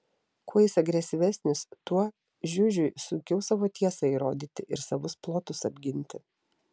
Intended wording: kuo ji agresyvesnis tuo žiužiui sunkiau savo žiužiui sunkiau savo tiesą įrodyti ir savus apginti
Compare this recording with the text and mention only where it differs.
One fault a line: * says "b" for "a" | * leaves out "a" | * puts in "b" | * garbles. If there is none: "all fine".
* says "jis" for "ji"
* leaves out "žiužiui sunkiau savo"
* puts in "plotus"